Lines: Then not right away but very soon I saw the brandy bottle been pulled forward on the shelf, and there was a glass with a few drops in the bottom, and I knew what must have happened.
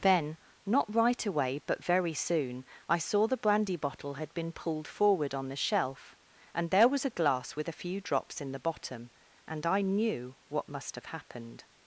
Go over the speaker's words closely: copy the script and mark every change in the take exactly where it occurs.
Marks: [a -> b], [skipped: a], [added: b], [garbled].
Then not right away but very soon I saw the brandy bottle [added: had] been pulled forward on the shelf, and there was a glass with a few drops in the bottom, and I knew what must have happened.